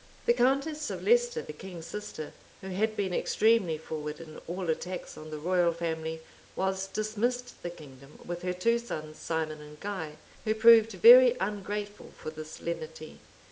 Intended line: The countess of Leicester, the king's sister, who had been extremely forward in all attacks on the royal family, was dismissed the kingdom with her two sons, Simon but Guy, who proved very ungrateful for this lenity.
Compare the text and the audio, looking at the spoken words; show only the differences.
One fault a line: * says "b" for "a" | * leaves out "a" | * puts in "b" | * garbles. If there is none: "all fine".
* says "and" for "but"